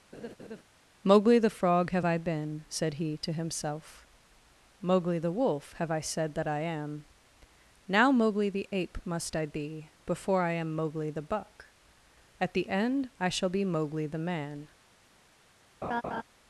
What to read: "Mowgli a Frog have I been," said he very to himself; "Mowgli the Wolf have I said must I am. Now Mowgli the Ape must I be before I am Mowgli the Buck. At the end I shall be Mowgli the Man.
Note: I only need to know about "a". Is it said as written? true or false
false